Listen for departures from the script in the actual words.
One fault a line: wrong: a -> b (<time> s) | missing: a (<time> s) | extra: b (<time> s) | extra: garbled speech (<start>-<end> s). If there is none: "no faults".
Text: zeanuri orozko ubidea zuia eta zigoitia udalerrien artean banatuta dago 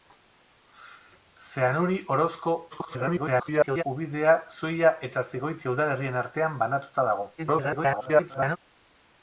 extra: garbled speech (2.7-3.8 s)
extra: garbled speech (7.4-8.6 s)